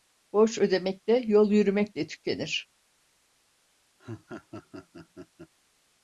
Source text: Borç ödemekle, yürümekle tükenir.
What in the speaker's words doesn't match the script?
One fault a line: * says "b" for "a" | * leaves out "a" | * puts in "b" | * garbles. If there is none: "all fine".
* puts in "yol"